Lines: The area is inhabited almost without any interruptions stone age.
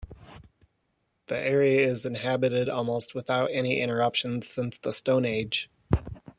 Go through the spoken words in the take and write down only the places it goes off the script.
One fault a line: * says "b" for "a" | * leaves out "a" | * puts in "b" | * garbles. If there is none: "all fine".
* puts in "since the"